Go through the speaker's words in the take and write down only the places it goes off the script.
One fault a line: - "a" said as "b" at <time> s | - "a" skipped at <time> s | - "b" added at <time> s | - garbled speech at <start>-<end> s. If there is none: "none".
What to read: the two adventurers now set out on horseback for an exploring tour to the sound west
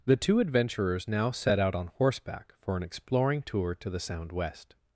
none